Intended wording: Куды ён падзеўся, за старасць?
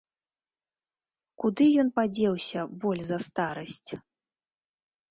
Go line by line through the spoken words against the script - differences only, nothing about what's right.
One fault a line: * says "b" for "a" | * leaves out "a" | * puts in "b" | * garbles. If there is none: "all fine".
* puts in "боль"